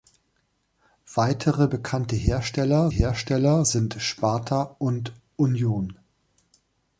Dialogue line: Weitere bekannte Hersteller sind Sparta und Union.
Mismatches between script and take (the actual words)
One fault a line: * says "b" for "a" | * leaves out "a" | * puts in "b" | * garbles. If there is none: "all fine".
* puts in "Hersteller"